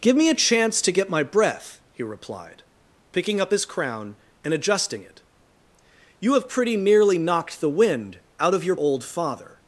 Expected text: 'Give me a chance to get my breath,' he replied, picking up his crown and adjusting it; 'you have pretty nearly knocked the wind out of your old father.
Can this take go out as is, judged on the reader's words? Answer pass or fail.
pass